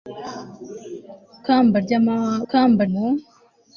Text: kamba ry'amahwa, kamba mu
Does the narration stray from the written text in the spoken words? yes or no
no